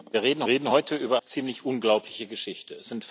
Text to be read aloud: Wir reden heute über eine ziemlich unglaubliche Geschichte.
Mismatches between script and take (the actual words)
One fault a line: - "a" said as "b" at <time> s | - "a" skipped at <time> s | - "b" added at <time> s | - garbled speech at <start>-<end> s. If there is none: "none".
- "reden" added at 0.5 s
- "eine" skipped at 1.2 s